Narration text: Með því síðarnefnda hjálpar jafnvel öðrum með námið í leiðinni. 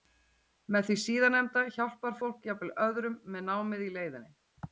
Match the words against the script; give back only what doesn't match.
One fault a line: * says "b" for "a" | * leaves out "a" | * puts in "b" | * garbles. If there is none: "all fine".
* puts in "fólk"